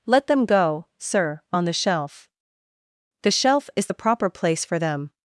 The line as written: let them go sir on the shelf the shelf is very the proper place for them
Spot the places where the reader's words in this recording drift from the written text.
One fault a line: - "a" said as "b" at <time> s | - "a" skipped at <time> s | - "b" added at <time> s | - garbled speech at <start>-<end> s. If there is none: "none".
- "very" skipped at 3.9 s